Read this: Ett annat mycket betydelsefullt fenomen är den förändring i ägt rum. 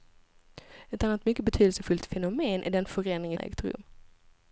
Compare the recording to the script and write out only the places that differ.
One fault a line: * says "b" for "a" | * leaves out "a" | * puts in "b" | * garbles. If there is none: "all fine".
all fine